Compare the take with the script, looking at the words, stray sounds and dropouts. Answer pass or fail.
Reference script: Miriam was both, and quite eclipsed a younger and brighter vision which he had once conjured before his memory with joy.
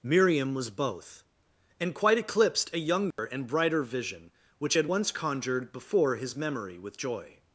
fail